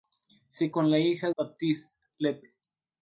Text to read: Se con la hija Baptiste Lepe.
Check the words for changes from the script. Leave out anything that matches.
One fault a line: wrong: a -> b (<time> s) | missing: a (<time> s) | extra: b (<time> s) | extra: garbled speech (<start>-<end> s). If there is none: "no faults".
no faults